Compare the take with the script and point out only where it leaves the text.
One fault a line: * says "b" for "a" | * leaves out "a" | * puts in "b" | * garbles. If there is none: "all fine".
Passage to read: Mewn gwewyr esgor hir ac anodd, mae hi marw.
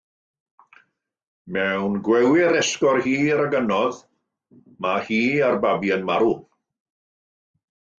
* puts in "a'r babi yn"